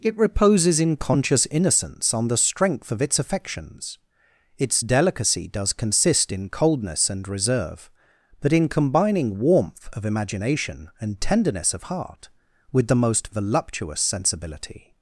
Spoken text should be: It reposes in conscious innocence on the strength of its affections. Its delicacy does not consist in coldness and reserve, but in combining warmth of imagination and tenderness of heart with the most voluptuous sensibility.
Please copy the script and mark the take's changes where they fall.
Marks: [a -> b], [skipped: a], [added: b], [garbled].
It reposes in conscious innocence on the strength of its affections. Its delicacy does [skipped: not] consist in coldness and reserve, but in combining warmth of imagination and tenderness of heart with the most voluptuous sensibility.